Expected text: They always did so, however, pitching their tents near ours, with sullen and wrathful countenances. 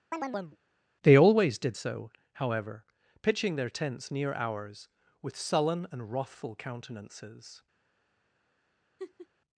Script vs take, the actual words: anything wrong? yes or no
no